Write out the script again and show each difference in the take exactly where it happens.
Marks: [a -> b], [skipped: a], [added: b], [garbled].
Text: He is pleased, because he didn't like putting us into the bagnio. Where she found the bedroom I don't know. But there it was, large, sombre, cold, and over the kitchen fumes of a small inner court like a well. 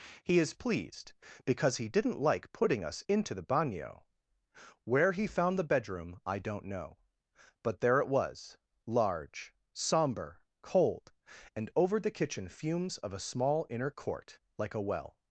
He is pleased, because he didn't like putting us into the bagnio. Where [she -> he] found the bedroom I don't know. But there it was, large, sombre, cold, and over the kitchen fumes of a small inner court like a well.